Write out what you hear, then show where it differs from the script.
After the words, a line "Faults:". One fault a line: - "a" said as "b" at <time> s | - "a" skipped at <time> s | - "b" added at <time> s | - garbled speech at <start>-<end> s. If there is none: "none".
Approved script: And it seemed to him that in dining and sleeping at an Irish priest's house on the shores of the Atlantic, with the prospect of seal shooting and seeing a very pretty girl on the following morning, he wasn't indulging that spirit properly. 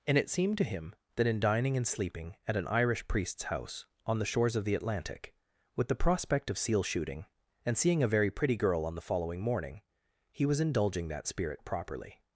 And it seemed to him that in dining and sleeping at an Irish priest's house on the shores of the Atlantic, with the prospect of seal shooting and seeing a very pretty girl on the following morning, he was indulging that spirit properly.
Faults:
- "wasn't" said as "was" at 10.4 s